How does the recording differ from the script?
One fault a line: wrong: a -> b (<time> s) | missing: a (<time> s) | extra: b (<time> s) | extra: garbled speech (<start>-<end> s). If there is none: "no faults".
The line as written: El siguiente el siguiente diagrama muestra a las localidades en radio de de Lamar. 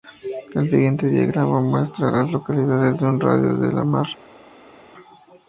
missing: el siguiente (1.1 s)
extra: un (3.1 s)